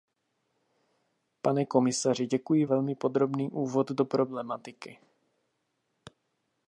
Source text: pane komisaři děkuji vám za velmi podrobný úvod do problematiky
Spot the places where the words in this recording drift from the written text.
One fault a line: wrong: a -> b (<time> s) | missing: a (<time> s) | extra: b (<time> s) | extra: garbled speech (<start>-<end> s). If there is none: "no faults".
missing: vám za (2.6 s)